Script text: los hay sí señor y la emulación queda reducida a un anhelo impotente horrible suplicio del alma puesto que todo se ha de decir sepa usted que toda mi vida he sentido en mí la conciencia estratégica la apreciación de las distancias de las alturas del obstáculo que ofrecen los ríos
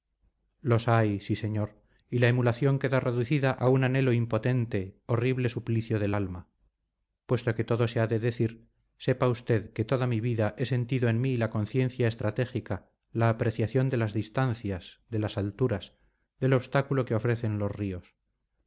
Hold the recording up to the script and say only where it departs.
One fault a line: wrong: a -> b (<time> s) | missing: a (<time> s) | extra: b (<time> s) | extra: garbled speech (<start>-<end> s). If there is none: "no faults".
no faults